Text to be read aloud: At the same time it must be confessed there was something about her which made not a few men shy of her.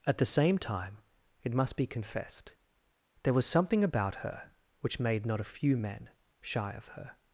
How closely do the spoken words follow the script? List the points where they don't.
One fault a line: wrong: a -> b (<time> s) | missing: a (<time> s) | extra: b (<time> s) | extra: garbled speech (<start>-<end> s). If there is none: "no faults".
no faults